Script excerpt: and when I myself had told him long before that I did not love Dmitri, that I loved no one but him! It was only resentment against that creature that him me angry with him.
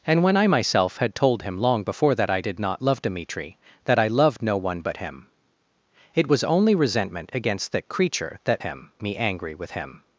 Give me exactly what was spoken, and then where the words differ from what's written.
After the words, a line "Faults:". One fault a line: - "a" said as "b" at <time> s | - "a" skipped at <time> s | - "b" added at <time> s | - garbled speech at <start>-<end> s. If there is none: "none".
and when I myself had told him long before that I did not love Dmitri, that I loved no one but him! It was only resentment against that creature that him me angry with him.
Faults:
none